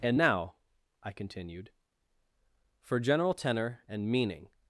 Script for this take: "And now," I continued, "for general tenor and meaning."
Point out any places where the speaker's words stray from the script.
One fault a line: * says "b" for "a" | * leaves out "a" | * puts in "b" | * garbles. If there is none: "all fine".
all fine